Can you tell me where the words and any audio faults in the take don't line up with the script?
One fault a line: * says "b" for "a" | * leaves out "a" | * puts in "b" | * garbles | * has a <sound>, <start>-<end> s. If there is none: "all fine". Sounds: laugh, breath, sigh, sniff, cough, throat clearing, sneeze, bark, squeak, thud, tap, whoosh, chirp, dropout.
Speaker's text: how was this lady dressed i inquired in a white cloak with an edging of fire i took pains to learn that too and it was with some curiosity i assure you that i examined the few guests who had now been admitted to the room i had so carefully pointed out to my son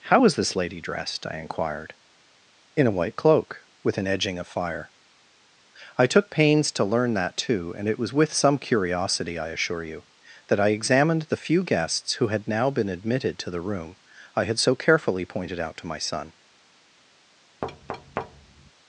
* has a thud, 17.6-18.7 s